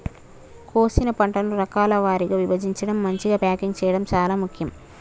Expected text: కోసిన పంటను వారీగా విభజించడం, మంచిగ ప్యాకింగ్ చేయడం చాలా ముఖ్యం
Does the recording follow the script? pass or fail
fail